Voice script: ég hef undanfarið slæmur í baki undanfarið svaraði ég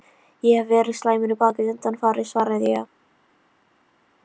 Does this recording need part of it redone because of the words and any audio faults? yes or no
yes